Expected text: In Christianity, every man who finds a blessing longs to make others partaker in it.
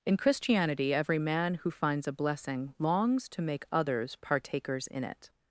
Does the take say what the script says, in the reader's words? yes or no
no